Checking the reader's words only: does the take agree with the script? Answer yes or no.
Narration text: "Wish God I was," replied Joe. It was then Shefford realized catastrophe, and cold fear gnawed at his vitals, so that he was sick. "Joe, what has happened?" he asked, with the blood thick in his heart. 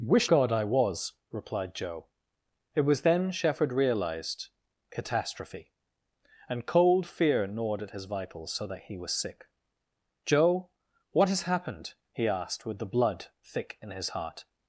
yes